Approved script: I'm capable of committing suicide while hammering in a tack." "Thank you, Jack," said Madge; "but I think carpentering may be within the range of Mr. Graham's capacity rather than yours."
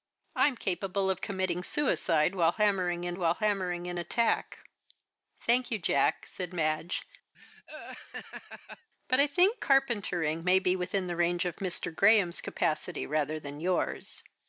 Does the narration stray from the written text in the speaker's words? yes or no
yes